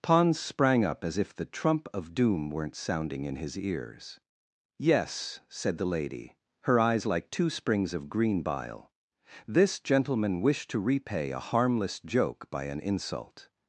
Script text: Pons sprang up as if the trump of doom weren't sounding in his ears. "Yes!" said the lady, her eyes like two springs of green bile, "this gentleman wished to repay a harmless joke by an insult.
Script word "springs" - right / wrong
right